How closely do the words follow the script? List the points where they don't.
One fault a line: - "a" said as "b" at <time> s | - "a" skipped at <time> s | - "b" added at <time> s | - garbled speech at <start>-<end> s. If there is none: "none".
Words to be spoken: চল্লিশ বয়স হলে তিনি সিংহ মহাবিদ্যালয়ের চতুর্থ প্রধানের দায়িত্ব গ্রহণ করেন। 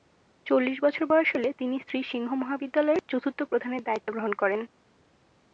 - "বছর" added at 0.8 s
- "শ্রী" added at 1.8 s